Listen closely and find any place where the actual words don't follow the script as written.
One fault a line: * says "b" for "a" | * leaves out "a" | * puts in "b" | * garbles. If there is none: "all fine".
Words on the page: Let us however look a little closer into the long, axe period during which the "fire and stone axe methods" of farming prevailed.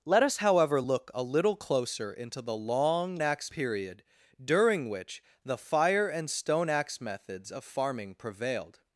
all fine